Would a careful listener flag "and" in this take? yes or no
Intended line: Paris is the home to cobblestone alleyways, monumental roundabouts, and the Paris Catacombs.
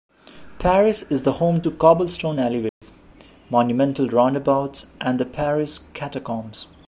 no